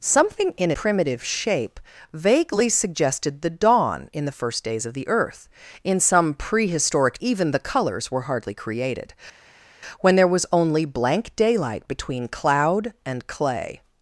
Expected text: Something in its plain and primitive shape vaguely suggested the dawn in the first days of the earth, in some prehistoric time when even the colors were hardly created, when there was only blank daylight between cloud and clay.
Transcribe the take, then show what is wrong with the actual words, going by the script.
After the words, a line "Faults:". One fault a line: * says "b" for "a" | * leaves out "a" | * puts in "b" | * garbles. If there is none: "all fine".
Something in primitive shape vaguely suggested the dawn in the first days of the earth, in some prehistoric even the colors were hardly created, when there was only blank daylight between cloud and clay.
Faults:
* leaves out "its plain and"
* leaves out "time when"